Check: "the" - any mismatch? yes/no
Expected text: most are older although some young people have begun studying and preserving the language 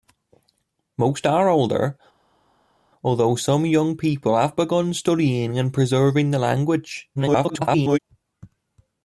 no